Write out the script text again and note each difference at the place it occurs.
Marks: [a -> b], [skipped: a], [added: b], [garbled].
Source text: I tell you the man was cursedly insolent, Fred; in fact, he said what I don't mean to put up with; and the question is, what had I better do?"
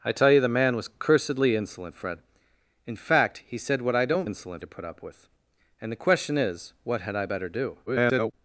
I tell you the man was cursedly insolent, Fred; in fact, he said what I don't [mean -> insolent] to put up with; and the question is, what had I better do?" [garbled]